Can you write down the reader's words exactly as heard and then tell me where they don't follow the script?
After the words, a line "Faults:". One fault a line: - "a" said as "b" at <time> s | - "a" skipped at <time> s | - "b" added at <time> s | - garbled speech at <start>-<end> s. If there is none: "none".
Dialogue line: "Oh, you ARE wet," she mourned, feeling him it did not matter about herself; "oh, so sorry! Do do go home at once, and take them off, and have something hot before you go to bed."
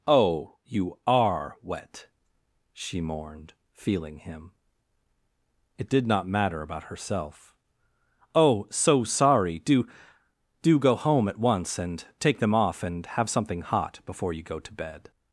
"Oh, you ARE wet," she mourned, feeling him it did not matter about herself; "oh, so sorry! Do do go home at once, and take them off, and have something hot before you go to bed."
Faults:
none